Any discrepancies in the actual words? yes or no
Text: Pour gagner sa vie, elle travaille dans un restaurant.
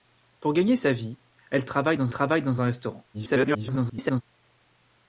yes